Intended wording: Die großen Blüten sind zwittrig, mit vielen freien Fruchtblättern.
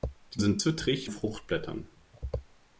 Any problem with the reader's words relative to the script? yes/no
yes